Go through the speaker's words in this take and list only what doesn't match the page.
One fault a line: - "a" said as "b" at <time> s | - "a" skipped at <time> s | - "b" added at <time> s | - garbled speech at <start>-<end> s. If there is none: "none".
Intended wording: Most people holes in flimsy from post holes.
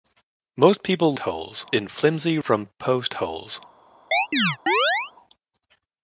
none